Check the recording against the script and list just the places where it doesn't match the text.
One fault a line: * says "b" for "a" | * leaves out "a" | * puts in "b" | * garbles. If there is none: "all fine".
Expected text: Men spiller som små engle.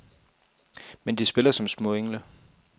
* puts in "de"